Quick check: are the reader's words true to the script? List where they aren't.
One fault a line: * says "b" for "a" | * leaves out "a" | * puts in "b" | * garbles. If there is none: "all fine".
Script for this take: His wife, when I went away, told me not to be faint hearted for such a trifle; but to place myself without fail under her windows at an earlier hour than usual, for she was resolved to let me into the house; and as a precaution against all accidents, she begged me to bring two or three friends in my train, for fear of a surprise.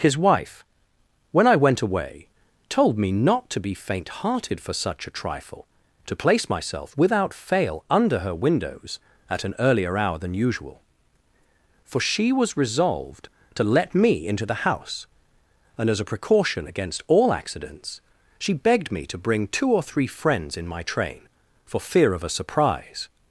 * leaves out "but"